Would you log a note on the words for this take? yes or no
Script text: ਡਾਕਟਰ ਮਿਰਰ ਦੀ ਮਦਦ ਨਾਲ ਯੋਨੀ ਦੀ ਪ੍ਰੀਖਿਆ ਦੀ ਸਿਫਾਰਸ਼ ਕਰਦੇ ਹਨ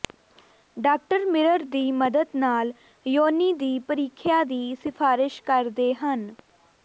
no